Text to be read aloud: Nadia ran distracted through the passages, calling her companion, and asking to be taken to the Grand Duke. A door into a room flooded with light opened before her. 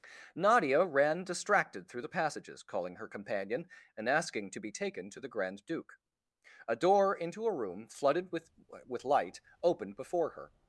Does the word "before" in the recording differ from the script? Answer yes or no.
no